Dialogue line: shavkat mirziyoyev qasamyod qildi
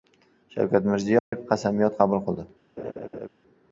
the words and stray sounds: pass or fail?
fail